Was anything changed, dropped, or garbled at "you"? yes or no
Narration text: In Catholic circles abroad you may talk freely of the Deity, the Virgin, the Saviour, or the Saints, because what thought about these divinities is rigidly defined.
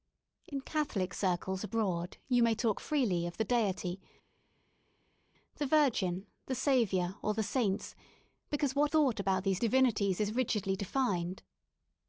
no